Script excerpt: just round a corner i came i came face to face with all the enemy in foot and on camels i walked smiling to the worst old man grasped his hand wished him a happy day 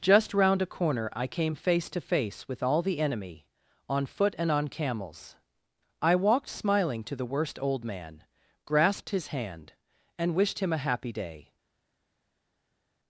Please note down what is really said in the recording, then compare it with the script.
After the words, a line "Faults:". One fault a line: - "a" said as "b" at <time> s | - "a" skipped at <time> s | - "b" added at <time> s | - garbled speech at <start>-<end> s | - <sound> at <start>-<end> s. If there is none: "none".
just round a corner i came face to face with all the enemy on foot and on camels i walked smiling to the worst old man grasped his hand and wished him a happy day
Faults:
- "i came" skipped at 1.5 s
- "in" said as "on" at 3.9 s
- "and" added at 10.2 s